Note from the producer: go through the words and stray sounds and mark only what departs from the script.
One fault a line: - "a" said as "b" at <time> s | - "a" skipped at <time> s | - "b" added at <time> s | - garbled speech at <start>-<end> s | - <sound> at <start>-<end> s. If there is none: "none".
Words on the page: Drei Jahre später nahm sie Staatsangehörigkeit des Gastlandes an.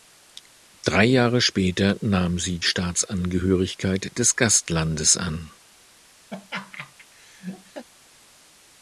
- laugh at 6.3-7.9 s